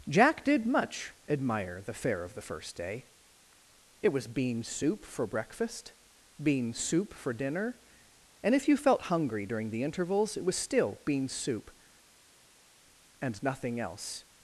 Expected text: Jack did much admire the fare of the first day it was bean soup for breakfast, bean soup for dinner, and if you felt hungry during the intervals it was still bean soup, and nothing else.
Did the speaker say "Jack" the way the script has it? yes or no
yes